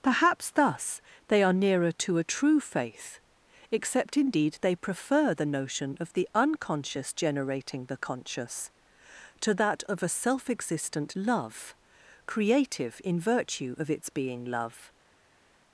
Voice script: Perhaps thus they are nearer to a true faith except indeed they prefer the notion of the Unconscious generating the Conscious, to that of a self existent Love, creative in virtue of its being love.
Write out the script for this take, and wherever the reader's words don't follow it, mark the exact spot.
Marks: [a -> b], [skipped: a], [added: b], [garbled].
Perhaps thus they are nearer to a true faith except indeed they prefer the notion of the Unconscious generating the Conscious, to that of a self existent Love, creative in virtue of its being love.